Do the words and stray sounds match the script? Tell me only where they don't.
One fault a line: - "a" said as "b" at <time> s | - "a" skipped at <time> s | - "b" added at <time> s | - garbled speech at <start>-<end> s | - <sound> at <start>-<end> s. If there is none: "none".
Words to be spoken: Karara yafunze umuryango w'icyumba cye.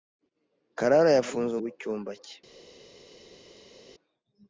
- "umuryango" skipped at 1.5 s